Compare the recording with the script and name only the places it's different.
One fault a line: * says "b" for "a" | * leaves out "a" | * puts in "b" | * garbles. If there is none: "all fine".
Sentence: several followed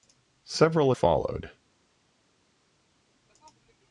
all fine